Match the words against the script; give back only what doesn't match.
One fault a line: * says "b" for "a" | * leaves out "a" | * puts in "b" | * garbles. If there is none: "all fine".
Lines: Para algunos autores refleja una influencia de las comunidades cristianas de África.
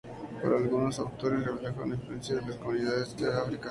* leaves out "cristianas"